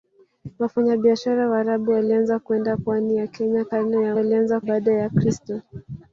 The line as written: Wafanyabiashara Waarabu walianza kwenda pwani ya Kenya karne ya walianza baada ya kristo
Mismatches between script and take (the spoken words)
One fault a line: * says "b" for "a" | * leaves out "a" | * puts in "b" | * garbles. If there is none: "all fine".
all fine